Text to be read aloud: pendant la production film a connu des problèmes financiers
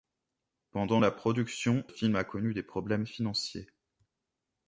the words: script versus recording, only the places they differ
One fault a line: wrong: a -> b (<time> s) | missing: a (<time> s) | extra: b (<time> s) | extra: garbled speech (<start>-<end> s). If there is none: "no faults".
no faults